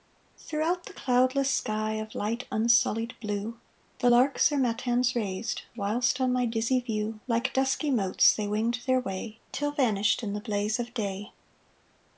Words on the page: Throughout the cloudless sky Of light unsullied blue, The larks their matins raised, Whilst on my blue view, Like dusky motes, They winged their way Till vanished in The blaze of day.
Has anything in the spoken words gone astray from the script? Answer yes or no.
yes